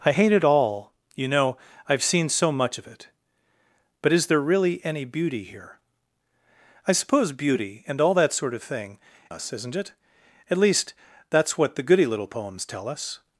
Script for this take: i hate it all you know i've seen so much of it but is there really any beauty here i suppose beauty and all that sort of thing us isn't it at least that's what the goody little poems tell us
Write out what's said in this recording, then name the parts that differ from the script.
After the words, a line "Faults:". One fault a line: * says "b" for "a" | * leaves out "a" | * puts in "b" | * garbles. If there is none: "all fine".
i hate it all you know i've seen so much of it but is there really any beauty here i suppose beauty and all that sort of thing us isn't it at least that's what the goody little poems tell us
Faults:
all fine